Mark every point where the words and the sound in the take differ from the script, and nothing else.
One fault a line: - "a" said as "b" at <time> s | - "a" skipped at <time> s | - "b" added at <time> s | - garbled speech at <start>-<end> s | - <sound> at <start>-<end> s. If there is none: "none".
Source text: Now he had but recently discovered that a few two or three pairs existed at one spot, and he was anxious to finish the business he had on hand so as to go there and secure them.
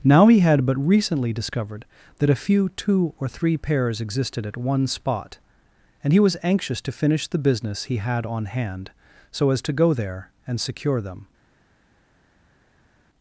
none